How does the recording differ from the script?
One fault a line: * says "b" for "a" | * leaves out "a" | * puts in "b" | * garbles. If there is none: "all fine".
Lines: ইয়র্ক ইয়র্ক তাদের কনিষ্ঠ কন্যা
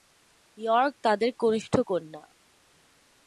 * leaves out "ইয়র্ক"